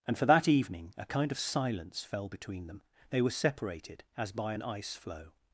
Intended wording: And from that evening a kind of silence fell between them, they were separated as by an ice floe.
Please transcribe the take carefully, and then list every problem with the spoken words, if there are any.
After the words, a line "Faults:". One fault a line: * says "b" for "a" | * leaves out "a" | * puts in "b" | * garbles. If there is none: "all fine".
And for that evening a kind of silence fell between them, they were separated as by an ice floe.
Faults:
* says "for" for "from"